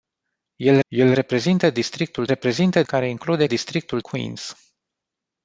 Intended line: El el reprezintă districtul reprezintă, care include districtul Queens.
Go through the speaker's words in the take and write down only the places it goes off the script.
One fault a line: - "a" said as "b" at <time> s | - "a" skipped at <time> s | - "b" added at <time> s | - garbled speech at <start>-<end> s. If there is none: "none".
none